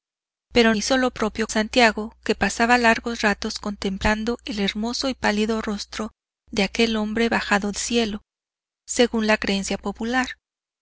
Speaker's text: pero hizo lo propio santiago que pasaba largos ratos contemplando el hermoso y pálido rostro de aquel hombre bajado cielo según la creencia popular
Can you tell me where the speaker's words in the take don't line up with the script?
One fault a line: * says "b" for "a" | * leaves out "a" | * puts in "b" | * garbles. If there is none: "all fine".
all fine